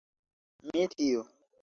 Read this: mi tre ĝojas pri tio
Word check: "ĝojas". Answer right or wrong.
wrong